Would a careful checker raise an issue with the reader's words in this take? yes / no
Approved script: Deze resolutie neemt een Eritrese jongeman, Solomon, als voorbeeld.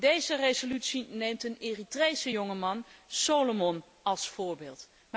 no